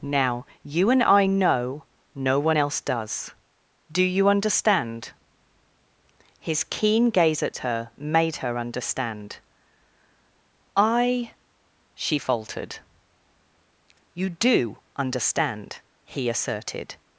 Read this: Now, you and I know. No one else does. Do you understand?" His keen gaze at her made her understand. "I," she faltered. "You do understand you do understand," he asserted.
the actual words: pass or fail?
fail